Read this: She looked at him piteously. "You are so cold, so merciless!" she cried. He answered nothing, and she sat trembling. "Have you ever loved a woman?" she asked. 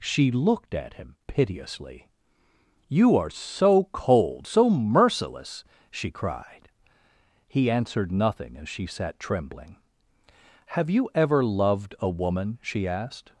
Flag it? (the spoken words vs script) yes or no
yes